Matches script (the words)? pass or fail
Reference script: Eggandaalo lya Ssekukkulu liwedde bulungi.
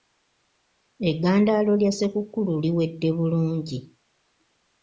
pass